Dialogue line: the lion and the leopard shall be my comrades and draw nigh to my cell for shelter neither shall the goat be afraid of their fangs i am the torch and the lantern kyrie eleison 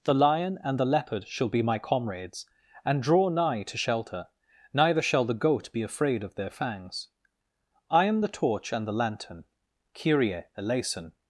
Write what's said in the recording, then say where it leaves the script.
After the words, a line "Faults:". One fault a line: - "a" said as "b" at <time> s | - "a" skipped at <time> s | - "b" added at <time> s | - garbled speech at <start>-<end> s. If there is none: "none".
the lion and the leopard shall be my comrades and draw nigh to shelter neither shall the goat be afraid of their fangs i am the torch and the lantern kyrie eleison
Faults:
- "my cell for" skipped at 3.8 s